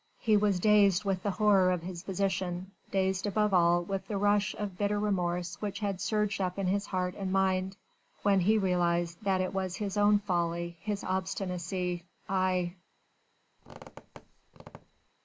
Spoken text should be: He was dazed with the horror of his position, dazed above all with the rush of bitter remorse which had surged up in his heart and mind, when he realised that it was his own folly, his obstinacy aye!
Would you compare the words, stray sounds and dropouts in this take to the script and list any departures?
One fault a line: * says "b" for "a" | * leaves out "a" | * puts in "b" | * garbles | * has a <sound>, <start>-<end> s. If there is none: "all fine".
* has a squeak, 13.6-15.1 s